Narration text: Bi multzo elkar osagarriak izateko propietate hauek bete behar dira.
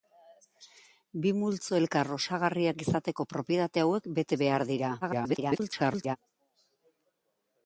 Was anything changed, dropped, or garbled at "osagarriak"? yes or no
no